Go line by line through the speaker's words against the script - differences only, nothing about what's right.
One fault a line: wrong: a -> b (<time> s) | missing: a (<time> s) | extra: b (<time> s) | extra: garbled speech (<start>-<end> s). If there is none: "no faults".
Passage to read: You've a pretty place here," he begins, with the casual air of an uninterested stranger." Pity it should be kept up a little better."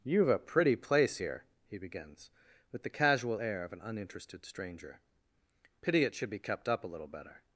no faults